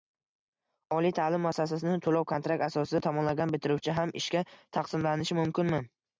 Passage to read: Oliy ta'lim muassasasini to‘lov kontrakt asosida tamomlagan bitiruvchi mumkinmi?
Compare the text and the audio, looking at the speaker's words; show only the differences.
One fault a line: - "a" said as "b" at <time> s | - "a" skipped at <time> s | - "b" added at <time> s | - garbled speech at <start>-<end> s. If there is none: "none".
- "ham ishga taqsimlanishi" added at 4.0 s